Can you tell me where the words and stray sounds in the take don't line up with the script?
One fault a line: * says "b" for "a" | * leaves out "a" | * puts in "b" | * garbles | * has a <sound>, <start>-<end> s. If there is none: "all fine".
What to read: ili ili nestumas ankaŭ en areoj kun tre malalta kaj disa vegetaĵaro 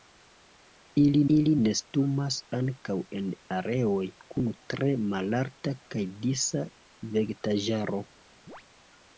* has a chirp, 8.5-8.6 s